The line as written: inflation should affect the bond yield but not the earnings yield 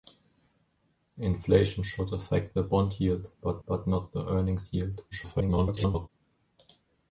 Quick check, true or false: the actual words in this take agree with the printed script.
false